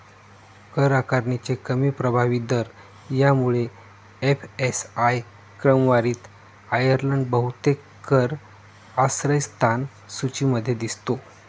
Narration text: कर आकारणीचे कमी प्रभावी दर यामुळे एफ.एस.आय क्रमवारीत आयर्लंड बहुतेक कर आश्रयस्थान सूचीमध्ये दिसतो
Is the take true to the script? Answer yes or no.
yes